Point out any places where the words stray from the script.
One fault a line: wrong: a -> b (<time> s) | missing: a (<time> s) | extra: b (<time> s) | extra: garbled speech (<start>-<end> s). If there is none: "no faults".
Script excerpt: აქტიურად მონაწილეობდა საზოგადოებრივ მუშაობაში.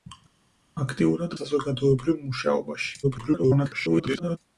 missing: მონაწილეობდა (1.4 s)
extra: garbled speech (3.0-4.4 s)